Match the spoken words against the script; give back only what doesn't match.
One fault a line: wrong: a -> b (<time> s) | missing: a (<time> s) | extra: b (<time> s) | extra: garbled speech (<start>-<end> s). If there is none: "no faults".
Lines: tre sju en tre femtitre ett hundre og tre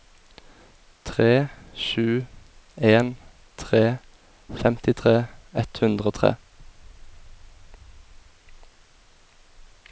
no faults